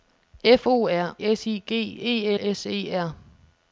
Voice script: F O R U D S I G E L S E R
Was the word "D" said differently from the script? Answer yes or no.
yes